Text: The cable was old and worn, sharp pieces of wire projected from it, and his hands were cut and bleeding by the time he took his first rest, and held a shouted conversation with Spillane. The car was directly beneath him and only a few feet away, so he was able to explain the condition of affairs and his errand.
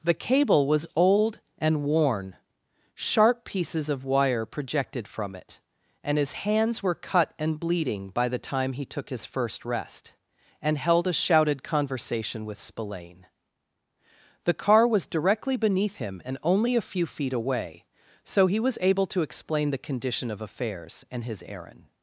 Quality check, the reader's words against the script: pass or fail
pass